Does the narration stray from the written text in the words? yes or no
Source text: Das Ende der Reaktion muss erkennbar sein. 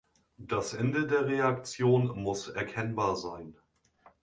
no